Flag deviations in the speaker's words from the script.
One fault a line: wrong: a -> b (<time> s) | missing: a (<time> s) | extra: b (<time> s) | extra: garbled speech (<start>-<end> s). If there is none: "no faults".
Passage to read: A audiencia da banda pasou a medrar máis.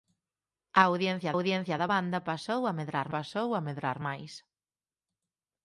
extra: audiencia (1.3 s)
extra: pasou a medrar (3.2 s)